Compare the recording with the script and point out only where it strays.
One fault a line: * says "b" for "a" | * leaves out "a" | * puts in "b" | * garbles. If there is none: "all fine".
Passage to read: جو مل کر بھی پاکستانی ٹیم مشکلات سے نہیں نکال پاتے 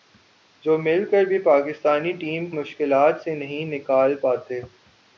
all fine